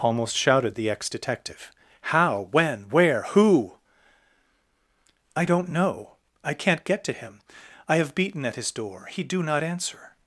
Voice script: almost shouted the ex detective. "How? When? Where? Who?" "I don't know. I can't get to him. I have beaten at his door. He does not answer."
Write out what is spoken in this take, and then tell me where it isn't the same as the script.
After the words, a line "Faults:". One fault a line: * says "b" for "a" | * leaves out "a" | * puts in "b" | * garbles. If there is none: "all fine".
almost shouted the ex detective. "How? When? Where? Who?" "I don't know. I can't get to him. I have beaten at his door. He do not answer."
Faults:
* says "do" for "does"